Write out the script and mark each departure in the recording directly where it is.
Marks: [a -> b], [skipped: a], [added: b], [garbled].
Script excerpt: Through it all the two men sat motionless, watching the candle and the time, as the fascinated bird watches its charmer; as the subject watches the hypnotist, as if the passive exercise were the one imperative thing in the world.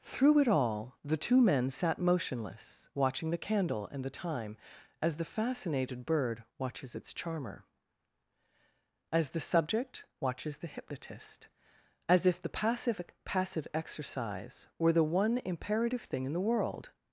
Through it all the two men sat motionless, watching the candle and the time, as the fascinated bird watches its charmer; as the subject watches the hypnotist, as if the passive [added: passive] exercise were the one imperative thing in the world.